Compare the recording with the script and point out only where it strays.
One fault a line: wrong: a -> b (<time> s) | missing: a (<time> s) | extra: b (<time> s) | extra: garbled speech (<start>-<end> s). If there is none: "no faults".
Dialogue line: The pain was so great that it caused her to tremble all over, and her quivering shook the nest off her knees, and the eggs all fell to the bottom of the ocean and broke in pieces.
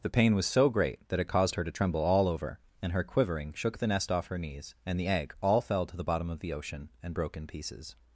wrong: eggs -> egg (5.1 s)